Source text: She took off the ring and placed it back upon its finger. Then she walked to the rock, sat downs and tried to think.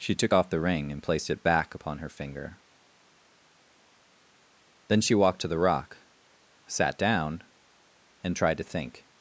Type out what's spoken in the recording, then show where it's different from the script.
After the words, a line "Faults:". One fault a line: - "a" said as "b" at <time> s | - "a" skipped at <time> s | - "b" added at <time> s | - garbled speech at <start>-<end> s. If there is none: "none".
She took off the ring and placed it back upon her finger. Then she walked to the rock, sat down and tried to think.
Faults:
- "its" said as "her" at 2.0 s
- "downs" said as "down" at 7.0 s